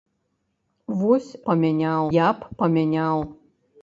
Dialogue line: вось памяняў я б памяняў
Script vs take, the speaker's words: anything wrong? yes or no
no